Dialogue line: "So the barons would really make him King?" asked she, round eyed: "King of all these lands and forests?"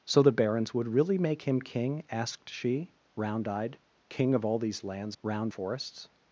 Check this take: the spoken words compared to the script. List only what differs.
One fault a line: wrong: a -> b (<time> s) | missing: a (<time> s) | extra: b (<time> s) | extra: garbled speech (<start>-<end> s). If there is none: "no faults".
wrong: and -> round (5.2 s)